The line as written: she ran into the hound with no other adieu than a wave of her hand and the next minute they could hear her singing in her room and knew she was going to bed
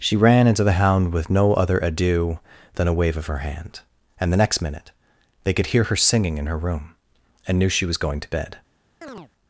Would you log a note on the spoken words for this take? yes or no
no